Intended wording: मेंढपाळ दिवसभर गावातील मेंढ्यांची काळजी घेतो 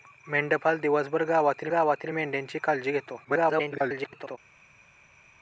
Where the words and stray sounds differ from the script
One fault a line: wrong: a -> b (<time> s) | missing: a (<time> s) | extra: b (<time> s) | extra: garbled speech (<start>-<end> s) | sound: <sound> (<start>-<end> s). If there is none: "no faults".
extra: गावातील (1.7 s)
extra: garbled speech (3.2-4.4 s)